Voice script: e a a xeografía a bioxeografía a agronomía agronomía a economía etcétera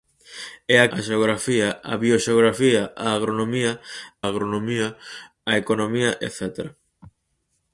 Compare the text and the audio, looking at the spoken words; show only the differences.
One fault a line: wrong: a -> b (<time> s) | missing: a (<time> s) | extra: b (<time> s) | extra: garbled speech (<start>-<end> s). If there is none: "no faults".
no faults